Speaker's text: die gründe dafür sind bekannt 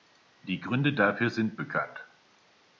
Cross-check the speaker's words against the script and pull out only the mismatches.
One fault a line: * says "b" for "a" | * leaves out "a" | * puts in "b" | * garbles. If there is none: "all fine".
all fine